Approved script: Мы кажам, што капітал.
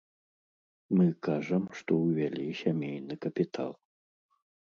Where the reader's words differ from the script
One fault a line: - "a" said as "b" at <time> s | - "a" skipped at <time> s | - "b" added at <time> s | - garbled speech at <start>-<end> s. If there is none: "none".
- "ўвялі сямейны" added at 2.1 s